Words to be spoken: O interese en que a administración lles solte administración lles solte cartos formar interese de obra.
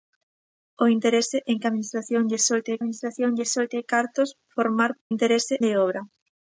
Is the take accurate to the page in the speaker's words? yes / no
yes